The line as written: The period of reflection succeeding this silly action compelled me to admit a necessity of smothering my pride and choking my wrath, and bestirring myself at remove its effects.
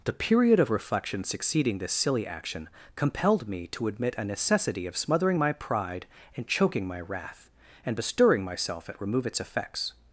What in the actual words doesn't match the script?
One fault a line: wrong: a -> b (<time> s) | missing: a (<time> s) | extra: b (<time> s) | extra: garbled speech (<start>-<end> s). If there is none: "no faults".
no faults